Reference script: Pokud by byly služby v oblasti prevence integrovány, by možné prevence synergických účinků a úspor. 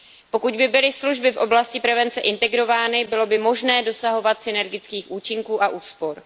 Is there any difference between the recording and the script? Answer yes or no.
yes